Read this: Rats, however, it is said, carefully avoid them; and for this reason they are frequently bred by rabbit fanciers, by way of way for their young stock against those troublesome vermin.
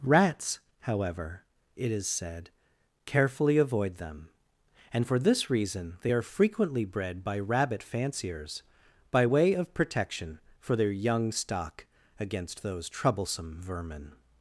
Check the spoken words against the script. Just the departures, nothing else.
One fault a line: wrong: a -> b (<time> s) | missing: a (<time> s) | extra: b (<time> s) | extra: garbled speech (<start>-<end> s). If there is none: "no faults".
wrong: way -> protection (9.7 s)